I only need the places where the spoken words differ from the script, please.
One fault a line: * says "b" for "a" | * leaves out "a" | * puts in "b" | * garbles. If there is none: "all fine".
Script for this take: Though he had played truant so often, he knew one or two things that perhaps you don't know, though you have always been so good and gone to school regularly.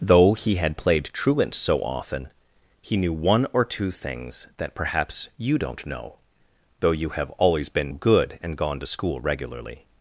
* leaves out "so"